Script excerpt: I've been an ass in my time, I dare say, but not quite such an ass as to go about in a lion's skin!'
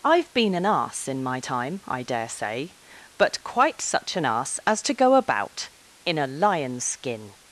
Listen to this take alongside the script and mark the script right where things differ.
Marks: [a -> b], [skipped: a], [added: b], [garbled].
I've been an ass in my time, I dare say, but [skipped: not] quite such an ass as to go about in a lion's skin!'